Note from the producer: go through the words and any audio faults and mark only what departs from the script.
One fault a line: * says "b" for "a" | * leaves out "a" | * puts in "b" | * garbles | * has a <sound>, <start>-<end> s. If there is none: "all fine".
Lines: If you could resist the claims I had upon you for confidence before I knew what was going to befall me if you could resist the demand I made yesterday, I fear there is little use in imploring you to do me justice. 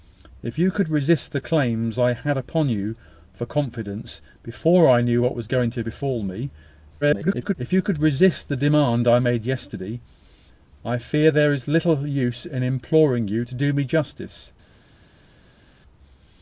* garbles